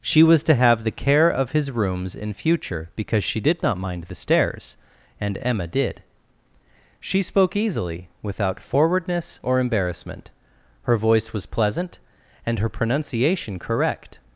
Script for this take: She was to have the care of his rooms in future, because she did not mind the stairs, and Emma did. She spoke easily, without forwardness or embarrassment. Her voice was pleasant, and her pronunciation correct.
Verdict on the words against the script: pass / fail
pass